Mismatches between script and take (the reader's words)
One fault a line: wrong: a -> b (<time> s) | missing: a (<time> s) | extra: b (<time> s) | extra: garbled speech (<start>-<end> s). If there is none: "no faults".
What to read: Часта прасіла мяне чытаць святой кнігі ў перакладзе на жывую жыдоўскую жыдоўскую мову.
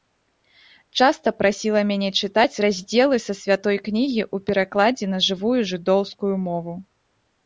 extra: раздзелы са (2.6 s)
missing: жыдоўскую (6.3 s)